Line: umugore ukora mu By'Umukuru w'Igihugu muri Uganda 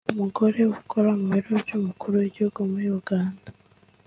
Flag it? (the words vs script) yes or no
yes